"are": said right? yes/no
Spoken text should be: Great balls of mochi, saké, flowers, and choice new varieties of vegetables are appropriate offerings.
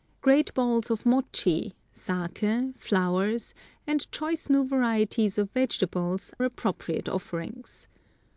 no